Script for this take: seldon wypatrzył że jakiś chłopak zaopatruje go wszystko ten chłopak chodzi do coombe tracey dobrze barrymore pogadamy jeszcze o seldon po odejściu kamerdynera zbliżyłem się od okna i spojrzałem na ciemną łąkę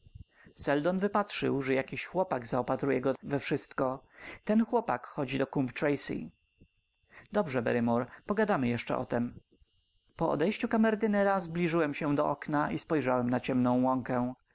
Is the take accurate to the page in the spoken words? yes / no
no